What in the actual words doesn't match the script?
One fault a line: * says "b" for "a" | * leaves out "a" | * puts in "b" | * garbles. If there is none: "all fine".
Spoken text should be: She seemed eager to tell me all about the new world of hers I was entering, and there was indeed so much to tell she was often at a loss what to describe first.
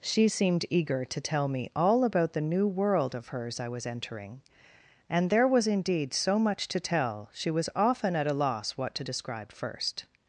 all fine